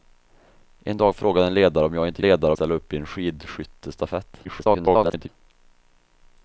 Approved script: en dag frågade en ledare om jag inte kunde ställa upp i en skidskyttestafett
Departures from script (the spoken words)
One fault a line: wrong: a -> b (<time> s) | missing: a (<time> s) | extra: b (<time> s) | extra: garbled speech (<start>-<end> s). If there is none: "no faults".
wrong: kunde -> ledare (2.2 s)
extra: garbled speech (4.4-5.3 s)